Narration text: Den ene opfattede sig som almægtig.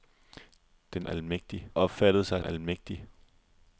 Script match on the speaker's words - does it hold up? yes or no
no